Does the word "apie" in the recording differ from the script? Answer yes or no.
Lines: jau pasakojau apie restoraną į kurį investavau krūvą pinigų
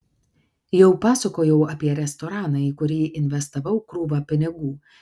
no